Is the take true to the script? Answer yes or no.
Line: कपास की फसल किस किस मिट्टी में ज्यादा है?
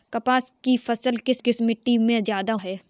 yes